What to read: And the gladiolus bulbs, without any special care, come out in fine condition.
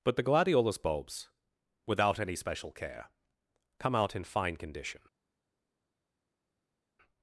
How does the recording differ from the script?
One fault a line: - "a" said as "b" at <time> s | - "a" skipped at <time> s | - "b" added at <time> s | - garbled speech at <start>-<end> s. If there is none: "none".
- "And" said as "But" at 0.0 s